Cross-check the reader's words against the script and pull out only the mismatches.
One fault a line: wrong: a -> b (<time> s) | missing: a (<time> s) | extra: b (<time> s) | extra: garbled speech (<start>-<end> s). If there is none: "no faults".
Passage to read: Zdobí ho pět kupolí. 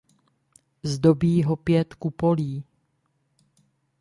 no faults